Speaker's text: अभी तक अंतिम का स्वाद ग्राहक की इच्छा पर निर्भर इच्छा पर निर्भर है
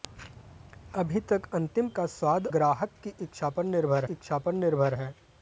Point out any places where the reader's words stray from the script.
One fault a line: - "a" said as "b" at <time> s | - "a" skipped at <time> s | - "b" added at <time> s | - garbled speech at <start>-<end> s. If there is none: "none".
none